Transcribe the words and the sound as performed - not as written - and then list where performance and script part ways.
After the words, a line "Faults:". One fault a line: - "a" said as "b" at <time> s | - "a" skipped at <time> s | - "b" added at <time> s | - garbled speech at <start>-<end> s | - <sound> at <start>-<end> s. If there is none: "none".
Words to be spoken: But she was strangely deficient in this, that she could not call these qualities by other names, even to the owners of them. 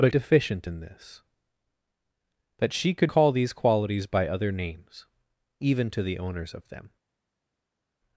But deficient in this, that she could call these qualities by other names, even to the owners of them.
Faults:
- "she was strangely" skipped at 0.1 s
- "not" skipped at 3.1 s